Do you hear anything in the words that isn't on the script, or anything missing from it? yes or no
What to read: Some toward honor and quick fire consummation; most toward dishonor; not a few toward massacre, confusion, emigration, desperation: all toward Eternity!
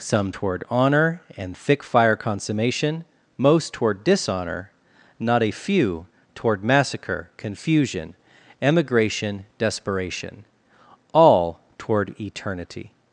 yes